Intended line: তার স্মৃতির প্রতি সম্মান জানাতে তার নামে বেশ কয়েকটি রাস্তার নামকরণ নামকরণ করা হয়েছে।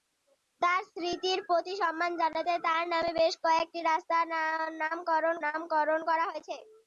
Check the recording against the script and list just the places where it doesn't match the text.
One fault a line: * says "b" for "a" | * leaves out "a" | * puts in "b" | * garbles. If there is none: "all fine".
all fine